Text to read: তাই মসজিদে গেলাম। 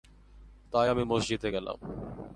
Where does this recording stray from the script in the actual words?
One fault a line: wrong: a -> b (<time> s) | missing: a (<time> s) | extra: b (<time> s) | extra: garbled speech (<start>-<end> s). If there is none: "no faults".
extra: আমি (0.9 s)